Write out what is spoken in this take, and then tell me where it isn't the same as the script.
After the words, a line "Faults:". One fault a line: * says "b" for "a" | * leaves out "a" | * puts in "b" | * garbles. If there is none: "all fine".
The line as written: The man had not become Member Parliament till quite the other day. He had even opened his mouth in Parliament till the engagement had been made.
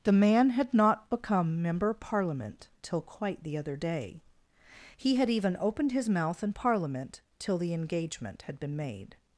The man had not become Member Parliament till quite the other day. He had even opened his mouth in Parliament till the engagement had been made.
Faults:
all fine